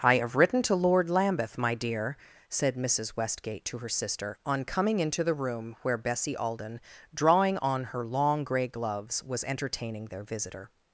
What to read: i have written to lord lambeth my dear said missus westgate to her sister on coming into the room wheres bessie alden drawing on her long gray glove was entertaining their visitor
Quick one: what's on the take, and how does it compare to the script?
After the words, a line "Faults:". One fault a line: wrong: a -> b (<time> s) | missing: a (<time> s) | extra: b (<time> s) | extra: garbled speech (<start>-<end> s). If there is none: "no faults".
i have written to lord lambeth my dear said missus westgate to her sister on coming into the room where bessie alden drawing on her long gray gloves was entertaining their visitor
Faults:
wrong: wheres -> where (5.8 s)
wrong: glove -> gloves (8.7 s)